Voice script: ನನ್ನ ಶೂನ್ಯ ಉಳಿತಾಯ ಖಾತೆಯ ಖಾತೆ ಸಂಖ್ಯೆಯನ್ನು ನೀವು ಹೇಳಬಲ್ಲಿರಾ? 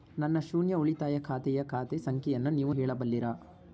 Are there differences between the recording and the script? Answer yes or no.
no